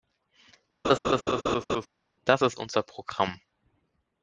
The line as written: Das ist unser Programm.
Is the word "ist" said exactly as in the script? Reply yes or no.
yes